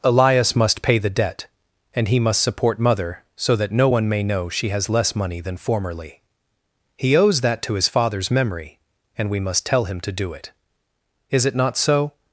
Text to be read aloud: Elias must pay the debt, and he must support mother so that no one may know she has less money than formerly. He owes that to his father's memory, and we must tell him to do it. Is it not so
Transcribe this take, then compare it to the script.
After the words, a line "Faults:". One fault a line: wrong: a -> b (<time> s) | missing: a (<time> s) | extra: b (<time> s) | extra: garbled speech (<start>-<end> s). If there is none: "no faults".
Elias must pay the debt, and he must support mother so that no one may know she has less money than formerly. He owes that to his father's memory, and we must tell him to do it. Is it not so
Faults:
no faults